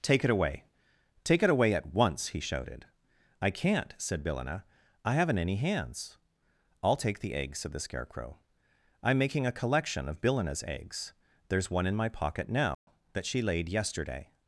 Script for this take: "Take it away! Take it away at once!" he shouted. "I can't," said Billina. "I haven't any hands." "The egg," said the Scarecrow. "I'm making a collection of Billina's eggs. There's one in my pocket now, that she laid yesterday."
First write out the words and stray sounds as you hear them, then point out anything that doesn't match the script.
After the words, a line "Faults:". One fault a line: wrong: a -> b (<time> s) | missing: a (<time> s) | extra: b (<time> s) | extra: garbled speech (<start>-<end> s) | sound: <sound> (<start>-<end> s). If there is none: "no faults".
"Take it away! Take it away at once!" he shouted. "I can't," said Billina. "I haven't any hands." "I'll take the egg," said the Scarecrow. "I'm making a collection of Billina's eggs. There's one in my pocket now, that she laid yesterday."
Faults:
extra: I'll take (6.8 s)
sound: dropout (12.7-12.9 s)